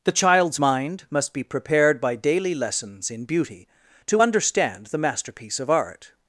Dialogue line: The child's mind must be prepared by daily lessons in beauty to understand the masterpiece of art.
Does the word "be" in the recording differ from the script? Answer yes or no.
no